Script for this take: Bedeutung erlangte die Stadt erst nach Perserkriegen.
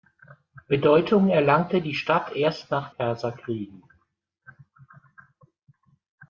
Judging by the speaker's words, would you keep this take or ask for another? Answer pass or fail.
pass